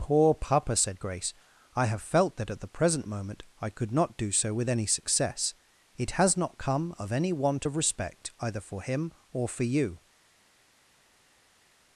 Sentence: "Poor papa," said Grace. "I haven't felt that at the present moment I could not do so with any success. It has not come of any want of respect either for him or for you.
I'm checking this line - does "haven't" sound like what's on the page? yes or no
no